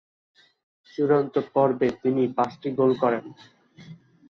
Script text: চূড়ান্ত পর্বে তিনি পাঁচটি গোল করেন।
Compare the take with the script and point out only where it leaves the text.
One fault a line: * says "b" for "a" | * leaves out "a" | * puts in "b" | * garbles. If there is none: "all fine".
all fine